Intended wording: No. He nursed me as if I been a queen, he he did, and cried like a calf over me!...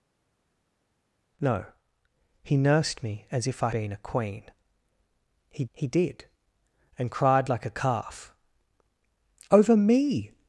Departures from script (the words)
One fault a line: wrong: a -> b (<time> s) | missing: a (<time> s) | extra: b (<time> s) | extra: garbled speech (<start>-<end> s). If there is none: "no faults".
no faults